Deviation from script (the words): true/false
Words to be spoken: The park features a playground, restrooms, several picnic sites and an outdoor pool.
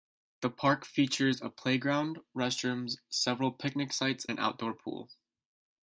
true